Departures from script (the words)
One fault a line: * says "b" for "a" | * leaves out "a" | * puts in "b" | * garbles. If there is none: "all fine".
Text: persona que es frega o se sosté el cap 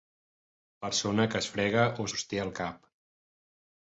* leaves out "se"